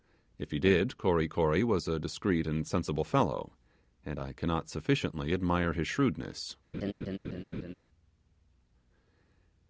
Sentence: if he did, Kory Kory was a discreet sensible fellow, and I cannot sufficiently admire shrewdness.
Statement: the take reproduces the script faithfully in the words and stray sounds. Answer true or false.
false